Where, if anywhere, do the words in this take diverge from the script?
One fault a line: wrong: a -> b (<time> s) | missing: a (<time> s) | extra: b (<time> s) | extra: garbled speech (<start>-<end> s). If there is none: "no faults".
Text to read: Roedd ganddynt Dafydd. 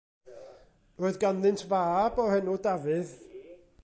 extra: fab o'r enw (1.7 s)